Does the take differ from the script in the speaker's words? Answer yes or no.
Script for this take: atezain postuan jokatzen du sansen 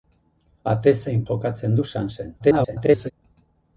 yes